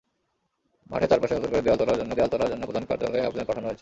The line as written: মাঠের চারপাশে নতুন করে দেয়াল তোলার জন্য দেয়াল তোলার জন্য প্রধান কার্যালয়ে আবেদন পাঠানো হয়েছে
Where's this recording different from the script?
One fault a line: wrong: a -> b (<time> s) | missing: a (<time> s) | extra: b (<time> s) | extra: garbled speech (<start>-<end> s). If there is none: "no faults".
no faults